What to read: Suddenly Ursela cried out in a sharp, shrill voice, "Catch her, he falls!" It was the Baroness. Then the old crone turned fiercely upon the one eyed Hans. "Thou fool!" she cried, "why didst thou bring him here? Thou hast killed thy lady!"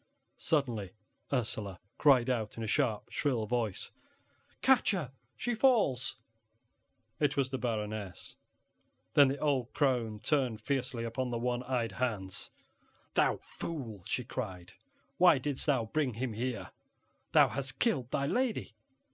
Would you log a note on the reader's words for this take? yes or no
yes